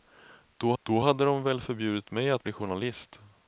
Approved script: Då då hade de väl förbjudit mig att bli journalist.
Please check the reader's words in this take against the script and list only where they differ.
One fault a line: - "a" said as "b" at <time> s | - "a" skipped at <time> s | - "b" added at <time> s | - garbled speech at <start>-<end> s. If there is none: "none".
none